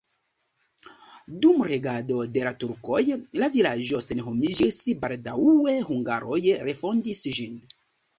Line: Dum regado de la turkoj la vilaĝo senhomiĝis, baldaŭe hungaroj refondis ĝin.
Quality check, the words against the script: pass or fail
pass